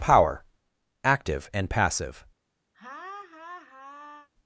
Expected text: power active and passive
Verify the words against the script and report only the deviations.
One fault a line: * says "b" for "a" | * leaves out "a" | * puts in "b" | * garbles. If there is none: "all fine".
all fine